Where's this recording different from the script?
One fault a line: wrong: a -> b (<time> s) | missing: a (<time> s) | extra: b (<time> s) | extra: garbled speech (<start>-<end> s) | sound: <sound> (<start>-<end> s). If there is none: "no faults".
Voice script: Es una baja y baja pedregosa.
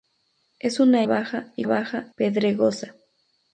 no faults